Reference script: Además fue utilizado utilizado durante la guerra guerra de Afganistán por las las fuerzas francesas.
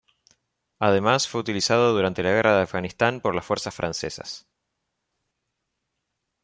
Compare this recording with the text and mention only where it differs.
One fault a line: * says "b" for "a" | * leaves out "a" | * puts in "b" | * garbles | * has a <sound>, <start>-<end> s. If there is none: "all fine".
* leaves out "utilizado"
* leaves out "guerra"
* leaves out "las"